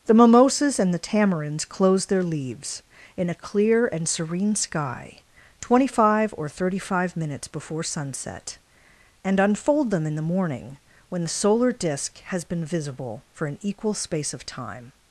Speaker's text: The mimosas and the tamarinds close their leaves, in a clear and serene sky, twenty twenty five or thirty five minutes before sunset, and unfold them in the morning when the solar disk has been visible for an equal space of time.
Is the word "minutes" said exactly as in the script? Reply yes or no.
yes